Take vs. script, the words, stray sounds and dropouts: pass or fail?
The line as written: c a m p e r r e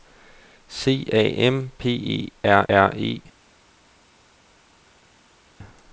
pass